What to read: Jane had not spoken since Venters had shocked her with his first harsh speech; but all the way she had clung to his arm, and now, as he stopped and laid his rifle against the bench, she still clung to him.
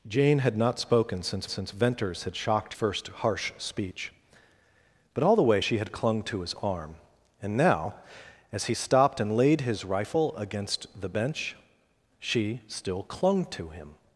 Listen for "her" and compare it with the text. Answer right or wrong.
wrong